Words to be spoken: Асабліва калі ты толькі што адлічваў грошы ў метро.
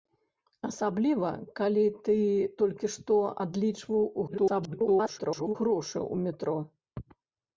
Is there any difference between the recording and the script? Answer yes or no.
yes